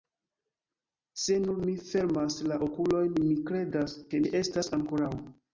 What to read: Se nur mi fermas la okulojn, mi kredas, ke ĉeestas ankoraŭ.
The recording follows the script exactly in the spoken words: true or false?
true